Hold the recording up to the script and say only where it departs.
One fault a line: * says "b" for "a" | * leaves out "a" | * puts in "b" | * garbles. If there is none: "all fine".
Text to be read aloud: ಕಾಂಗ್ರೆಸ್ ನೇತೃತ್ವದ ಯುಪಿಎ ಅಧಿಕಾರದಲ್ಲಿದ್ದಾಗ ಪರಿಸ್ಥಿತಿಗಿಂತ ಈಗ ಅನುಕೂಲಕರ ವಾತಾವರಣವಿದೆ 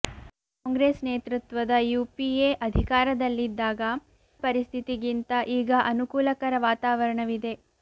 all fine